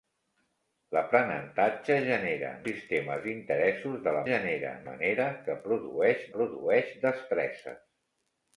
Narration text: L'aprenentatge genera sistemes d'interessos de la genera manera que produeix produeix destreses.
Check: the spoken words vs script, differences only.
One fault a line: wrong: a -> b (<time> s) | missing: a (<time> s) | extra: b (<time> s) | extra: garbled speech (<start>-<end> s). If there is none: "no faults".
no faults